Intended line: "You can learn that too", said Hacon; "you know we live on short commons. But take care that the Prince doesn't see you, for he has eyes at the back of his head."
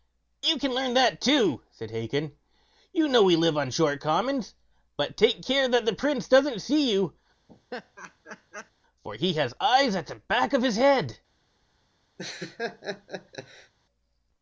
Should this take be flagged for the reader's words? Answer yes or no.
no